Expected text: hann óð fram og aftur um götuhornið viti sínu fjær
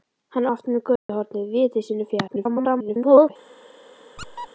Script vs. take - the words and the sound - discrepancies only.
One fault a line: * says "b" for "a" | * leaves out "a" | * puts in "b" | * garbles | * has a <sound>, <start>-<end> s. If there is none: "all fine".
* leaves out "óð fram"
* has a dropout, 1.0-1.1 s
* garbles
* has a squeak, 4.2-4.5 s